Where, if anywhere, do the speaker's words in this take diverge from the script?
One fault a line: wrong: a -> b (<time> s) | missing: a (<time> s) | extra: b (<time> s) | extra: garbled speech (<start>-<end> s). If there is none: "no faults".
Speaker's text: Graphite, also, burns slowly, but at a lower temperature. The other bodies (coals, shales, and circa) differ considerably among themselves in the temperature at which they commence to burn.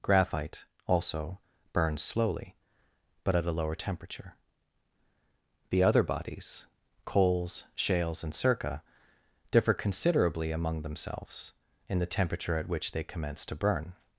no faults